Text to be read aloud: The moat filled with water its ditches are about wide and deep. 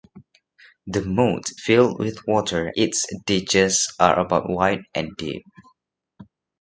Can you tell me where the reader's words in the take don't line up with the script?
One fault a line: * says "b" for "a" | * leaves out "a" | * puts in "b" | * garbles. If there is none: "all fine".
all fine